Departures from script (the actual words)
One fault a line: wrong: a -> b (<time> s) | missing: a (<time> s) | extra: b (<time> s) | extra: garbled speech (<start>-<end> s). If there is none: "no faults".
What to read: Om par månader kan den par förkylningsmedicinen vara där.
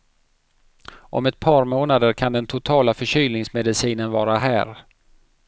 extra: ett (1.2 s)
wrong: par -> totala (2.5 s)
wrong: där -> här (4.4 s)